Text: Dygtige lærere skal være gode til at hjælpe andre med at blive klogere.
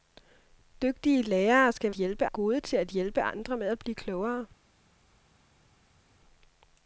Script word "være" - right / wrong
wrong